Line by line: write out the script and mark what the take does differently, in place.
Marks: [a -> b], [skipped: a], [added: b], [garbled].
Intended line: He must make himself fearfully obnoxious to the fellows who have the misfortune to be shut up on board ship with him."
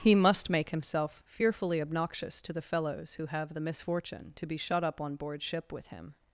He must make himself fearfully obnoxious to the fellows who have the misfortune to be shut up on board ship with him."